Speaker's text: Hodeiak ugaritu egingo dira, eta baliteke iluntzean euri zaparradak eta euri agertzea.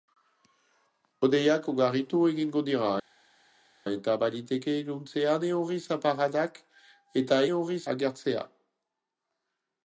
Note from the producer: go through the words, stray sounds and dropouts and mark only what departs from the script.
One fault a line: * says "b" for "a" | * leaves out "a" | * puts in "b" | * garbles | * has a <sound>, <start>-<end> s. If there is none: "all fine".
all fine